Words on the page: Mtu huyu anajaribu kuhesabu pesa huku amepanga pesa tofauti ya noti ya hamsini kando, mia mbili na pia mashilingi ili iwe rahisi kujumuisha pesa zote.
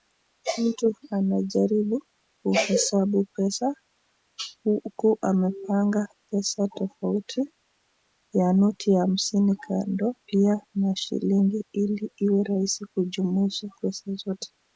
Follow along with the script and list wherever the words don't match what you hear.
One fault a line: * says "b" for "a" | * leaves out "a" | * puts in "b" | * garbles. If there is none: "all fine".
* leaves out "huyu"
* leaves out "mia mbili na"